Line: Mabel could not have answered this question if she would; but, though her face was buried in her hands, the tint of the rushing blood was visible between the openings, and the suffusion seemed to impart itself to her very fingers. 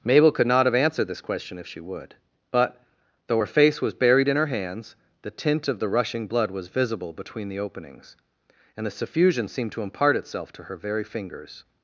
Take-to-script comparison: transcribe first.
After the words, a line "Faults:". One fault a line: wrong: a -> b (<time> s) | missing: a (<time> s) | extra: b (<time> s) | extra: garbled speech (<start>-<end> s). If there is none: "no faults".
Mabel could not have answered this question if she would; but, though her face was buried in her hands, the tint of the rushing blood was visible between the openings, and the suffusion seemed to impart itself to her very fingers.
Faults:
no faults